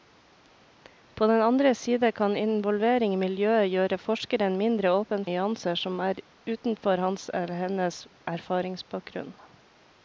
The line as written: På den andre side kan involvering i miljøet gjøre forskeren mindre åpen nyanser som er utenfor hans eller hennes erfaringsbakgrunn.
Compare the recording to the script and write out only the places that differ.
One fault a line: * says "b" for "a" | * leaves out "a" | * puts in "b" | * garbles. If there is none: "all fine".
all fine